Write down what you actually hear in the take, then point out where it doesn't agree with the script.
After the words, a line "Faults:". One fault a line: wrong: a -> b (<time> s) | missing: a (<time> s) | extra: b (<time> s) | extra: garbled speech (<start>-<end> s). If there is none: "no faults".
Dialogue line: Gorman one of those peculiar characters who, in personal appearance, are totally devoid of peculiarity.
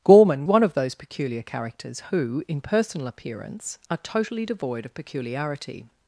Gorman one of those peculiar characters who, in personal appearance, are totally devoid of peculiarity.
Faults:
no faults